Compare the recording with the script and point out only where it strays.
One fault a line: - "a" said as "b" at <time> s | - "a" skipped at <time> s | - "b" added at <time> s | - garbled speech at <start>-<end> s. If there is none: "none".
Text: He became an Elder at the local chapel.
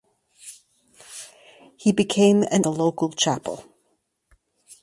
- "Elder at" skipped at 2.6 s